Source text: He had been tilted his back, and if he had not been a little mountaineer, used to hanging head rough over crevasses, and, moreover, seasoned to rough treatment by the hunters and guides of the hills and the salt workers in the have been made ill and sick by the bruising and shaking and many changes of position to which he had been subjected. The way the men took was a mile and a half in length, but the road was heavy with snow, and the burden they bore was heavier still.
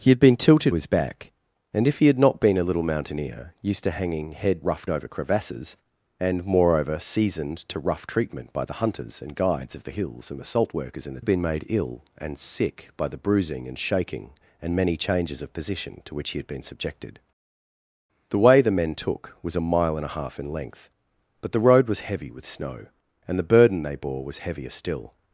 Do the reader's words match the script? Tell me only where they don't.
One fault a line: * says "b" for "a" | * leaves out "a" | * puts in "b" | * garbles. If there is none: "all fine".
all fine